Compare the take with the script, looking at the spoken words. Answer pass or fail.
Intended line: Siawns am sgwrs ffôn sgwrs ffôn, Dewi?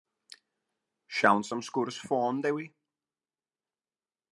fail